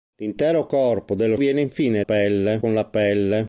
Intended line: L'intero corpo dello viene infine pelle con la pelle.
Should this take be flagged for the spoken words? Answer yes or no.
no